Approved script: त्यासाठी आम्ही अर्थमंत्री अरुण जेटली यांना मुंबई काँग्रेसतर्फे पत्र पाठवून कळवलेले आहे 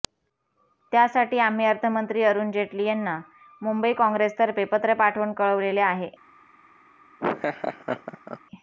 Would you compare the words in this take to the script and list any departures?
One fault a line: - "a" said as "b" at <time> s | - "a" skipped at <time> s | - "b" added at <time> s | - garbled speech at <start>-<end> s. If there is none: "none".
none